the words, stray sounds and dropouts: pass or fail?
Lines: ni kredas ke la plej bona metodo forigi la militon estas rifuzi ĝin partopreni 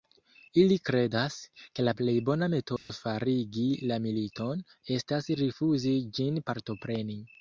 fail